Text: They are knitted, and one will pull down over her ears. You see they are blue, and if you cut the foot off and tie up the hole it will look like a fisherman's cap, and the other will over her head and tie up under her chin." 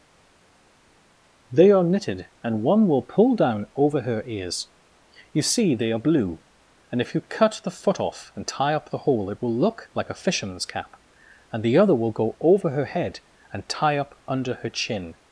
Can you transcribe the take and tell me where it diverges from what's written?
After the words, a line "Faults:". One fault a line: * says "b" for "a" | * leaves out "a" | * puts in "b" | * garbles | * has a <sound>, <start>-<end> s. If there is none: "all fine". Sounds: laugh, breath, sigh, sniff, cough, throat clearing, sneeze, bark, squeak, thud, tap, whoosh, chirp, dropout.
They are knitted, and one will pull down over her ears. You see they are blue, and if you cut the foot off and tie up the hole it will look like a fisherman's cap, and the other will go over her head and tie up under her chin."
Faults:
* puts in "go"